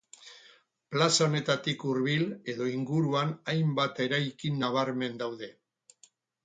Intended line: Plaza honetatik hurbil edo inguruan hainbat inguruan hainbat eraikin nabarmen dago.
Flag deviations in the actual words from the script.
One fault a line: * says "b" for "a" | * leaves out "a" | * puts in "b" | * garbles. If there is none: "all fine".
* leaves out "inguruan hainbat"
* says "daude" for "dago"